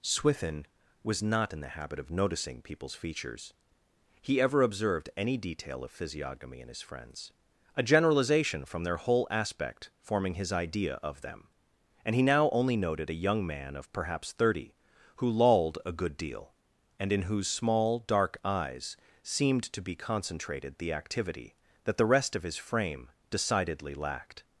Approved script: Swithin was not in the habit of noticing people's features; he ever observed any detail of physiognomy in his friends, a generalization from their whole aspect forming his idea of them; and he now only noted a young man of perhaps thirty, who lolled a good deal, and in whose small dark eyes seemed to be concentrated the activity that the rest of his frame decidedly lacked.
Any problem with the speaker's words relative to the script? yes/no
no